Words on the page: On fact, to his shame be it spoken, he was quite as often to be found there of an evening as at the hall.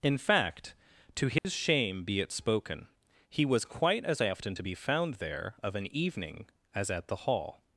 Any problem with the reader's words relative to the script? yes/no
yes